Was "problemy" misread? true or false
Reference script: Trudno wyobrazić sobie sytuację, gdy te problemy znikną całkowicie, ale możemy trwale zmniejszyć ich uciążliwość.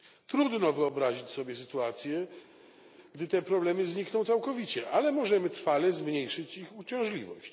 false